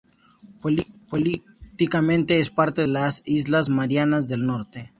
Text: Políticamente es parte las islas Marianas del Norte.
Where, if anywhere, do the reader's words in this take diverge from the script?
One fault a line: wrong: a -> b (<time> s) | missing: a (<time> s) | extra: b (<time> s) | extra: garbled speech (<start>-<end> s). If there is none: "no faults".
no faults